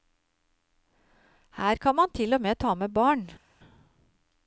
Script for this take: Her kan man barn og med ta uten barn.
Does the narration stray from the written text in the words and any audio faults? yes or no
yes